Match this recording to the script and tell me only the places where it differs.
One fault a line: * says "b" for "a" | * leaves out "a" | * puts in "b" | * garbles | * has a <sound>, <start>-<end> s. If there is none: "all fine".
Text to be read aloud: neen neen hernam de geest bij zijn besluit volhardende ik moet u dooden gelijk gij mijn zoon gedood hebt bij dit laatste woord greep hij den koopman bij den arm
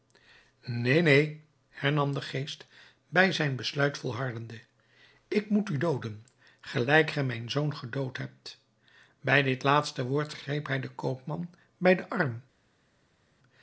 all fine